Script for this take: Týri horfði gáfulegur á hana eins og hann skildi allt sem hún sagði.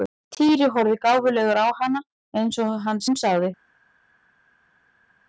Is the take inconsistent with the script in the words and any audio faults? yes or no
yes